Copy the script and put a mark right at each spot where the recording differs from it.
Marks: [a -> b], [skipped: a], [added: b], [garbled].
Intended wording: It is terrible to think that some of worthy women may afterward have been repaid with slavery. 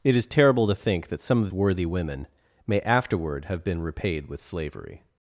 It is terrible to think that some of worthy women may afterward have been repaid with slavery.